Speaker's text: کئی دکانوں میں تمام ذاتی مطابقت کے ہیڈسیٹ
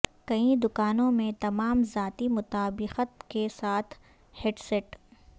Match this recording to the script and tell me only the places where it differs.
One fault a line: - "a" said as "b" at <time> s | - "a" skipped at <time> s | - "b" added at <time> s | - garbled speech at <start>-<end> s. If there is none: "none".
- "ساتھ" added at 3.5 s